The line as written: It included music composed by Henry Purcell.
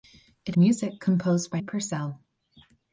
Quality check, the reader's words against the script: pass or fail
fail